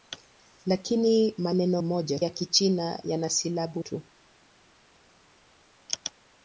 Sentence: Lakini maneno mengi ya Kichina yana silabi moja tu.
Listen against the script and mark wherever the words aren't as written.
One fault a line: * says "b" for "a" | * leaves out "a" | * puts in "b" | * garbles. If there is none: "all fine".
* says "moja" for "mengi"
* leaves out "moja"